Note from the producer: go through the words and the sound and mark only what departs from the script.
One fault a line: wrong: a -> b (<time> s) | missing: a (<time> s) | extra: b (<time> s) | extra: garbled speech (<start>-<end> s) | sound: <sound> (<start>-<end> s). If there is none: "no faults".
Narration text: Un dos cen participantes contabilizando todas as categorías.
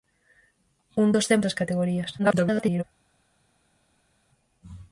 missing: participantes contabilizando todas (1.4 s)
extra: garbled speech (2.2-2.8 s)